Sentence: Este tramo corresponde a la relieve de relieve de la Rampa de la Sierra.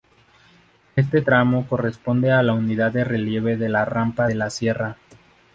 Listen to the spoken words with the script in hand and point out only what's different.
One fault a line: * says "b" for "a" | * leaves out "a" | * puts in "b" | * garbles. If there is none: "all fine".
* says "unidad" for "relieve"